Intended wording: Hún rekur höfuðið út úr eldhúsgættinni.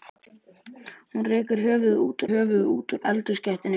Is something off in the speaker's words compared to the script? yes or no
yes